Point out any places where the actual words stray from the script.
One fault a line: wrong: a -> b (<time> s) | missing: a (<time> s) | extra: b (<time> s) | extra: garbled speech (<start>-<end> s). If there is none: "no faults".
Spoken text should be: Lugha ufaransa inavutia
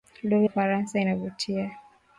no faults